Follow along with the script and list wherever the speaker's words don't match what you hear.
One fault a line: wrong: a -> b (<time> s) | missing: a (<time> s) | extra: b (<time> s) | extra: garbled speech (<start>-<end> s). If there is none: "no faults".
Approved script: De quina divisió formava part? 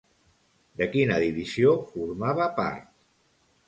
no faults